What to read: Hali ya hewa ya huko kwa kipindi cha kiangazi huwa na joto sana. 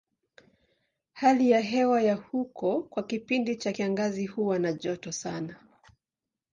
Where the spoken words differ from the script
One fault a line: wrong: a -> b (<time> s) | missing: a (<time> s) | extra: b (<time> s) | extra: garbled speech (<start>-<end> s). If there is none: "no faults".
no faults